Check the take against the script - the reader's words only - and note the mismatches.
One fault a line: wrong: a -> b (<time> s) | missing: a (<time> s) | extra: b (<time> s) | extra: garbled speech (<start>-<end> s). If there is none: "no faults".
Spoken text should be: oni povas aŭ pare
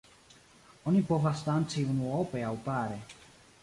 extra: danci unuope (1.5 s)